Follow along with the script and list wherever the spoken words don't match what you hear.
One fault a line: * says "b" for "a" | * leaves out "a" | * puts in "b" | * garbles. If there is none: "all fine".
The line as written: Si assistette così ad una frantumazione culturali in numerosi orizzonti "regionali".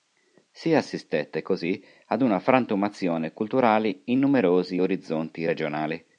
all fine